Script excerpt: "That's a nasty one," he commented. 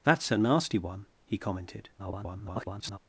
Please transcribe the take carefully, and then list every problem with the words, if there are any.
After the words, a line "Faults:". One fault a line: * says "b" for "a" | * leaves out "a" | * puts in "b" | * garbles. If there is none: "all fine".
"That's a nasty one," he commented. [garbled]
Faults:
* garbles